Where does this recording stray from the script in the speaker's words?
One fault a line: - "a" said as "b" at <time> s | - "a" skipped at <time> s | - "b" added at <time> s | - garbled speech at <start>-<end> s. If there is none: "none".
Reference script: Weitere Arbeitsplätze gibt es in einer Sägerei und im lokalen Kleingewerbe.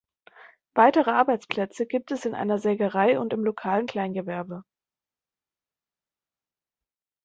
none